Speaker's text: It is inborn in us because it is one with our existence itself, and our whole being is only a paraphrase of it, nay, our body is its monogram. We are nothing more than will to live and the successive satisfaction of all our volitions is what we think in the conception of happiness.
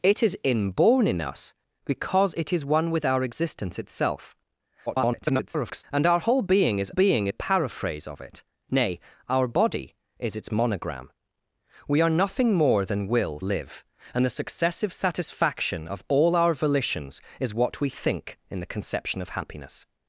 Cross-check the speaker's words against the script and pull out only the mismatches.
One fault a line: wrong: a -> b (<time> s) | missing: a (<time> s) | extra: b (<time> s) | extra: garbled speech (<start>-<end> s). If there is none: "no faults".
extra: garbled speech (4.9-5.8 s)
wrong: only -> being (6.9 s)
missing: to (13.4 s)